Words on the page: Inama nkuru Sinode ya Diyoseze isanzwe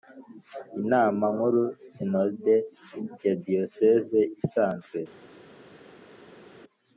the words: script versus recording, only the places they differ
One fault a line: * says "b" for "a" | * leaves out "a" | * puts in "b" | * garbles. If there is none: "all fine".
all fine